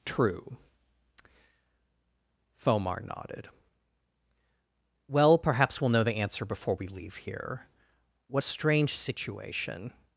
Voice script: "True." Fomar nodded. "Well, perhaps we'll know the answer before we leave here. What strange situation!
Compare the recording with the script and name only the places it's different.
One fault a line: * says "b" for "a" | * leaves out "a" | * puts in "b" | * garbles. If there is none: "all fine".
all fine